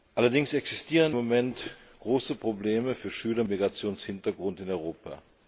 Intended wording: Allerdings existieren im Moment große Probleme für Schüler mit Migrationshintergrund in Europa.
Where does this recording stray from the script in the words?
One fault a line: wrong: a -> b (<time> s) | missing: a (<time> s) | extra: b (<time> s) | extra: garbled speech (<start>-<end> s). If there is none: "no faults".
missing: im (1.1 s)
missing: mit (3.4 s)